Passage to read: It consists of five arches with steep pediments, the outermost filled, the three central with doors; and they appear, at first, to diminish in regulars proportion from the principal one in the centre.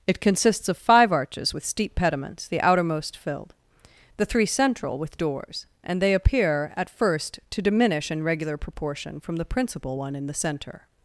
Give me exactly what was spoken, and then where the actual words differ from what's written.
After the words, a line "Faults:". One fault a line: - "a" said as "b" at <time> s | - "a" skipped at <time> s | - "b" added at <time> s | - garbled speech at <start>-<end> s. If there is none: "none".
It consists of five arches with steep pediments, the outermost filled, the three central with doors; and they appear, at first, to diminish in regular proportion from the principal one in the centre.
Faults:
- "regulars" said as "regular" at 8.2 s